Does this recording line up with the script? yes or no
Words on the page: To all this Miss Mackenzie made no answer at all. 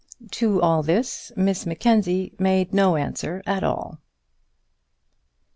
yes